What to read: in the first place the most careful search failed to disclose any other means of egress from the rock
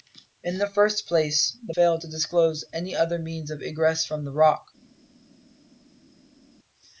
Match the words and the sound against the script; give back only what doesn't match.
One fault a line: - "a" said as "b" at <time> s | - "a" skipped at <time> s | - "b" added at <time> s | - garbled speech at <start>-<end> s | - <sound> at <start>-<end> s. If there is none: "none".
- "most careful search" skipped at 1.8 s